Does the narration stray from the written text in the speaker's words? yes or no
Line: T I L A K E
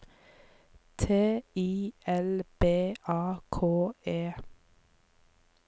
yes